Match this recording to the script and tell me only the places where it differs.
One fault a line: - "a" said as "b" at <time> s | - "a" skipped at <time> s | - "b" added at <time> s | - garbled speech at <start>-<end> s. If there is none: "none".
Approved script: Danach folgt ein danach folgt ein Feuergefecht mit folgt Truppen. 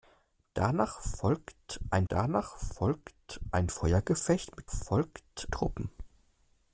none